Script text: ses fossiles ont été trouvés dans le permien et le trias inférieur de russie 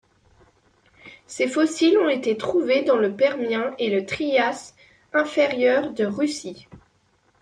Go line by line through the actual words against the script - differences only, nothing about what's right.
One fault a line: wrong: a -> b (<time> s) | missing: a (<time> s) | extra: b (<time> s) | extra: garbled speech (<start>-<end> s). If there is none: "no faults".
no faults